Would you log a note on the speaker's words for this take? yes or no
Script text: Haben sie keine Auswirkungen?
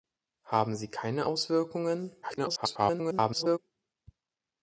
yes